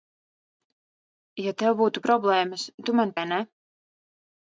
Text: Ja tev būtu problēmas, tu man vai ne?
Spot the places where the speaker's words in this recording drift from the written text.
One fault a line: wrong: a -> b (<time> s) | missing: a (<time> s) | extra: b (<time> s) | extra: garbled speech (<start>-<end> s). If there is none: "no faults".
no faults